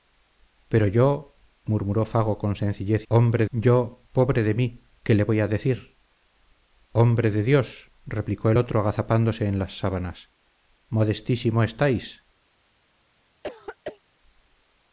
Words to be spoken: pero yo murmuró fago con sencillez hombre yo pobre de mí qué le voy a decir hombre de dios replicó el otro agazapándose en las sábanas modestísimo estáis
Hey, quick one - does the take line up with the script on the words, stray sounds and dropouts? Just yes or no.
no